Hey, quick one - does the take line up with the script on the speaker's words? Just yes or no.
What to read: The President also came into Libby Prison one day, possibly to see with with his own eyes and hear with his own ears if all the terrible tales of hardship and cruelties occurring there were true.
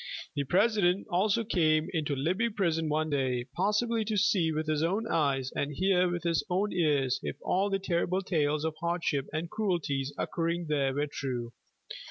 no